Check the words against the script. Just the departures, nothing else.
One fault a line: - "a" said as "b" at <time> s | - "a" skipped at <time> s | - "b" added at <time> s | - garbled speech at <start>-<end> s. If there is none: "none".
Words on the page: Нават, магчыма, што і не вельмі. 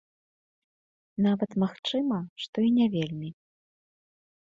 none